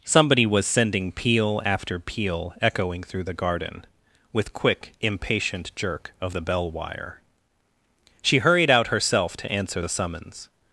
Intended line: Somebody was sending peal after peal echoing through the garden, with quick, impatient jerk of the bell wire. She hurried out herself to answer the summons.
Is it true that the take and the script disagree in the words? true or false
false